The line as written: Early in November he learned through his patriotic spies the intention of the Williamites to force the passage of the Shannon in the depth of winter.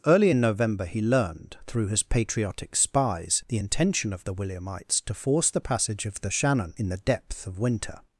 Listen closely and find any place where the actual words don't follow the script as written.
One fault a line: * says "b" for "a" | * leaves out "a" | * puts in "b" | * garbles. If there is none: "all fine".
all fine